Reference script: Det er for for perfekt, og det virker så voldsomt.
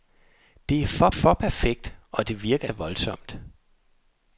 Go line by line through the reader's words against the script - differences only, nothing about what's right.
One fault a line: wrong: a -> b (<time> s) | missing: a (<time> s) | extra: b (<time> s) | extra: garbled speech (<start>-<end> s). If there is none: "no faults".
no faults